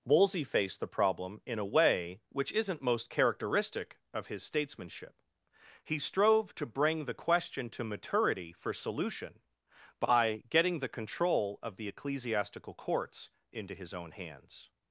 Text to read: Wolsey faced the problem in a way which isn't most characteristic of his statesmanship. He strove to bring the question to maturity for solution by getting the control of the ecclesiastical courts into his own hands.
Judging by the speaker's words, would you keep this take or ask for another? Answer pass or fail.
pass